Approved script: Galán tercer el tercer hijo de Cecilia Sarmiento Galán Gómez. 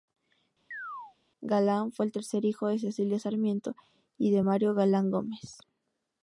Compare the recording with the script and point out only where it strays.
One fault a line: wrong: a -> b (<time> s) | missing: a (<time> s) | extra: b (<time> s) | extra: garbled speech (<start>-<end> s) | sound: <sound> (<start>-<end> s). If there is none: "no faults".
sound: chirp (0.7-1.2 s)
wrong: tercer -> fue (1.9 s)
extra: y de Mario (4.2 s)